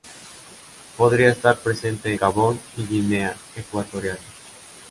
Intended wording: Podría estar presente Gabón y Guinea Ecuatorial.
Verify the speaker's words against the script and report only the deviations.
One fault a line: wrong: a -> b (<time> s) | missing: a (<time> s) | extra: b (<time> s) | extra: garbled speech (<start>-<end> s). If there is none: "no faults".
no faults